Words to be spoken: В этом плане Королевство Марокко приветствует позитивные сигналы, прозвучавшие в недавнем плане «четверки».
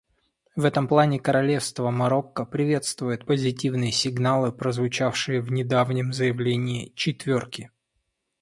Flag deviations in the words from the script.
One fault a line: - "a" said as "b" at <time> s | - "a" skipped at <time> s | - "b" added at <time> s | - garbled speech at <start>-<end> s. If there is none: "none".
- "плане" said as "заявлении" at 6.1 s